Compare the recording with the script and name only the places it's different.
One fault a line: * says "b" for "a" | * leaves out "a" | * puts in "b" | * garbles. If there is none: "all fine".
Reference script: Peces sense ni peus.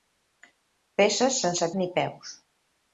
all fine